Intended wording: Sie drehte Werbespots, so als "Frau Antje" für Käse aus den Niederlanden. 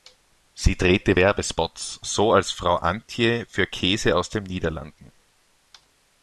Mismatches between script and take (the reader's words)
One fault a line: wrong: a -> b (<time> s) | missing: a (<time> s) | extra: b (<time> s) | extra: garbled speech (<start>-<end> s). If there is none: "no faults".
no faults